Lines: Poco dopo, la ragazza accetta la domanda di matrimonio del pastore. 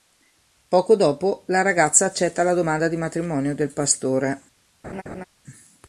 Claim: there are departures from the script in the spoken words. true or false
false